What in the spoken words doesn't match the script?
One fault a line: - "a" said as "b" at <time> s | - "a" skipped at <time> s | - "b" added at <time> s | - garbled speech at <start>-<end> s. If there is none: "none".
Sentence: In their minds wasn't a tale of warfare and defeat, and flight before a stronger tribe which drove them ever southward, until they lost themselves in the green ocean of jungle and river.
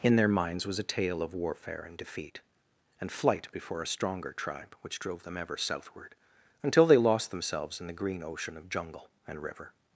- "wasn't" said as "was" at 0.7 s